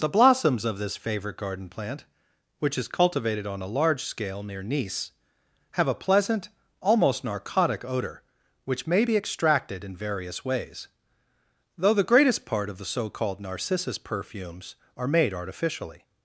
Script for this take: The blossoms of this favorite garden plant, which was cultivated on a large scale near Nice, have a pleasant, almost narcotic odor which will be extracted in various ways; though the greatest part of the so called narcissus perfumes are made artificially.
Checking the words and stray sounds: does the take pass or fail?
fail